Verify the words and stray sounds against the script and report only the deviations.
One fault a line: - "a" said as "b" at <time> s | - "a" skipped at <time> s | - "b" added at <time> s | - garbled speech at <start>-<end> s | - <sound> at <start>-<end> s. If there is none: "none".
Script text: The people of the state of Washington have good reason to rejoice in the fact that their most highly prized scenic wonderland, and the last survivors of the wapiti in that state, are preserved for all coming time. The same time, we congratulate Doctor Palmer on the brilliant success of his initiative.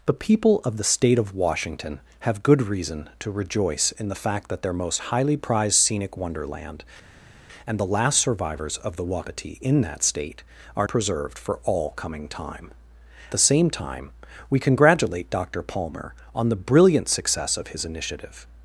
none